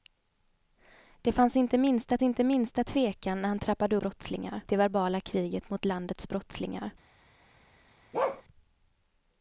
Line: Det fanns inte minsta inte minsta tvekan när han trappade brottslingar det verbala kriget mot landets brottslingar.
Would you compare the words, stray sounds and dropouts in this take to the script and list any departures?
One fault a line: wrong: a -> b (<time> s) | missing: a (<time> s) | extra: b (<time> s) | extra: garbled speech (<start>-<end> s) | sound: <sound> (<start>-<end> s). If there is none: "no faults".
sound: bark (8.1-8.4 s)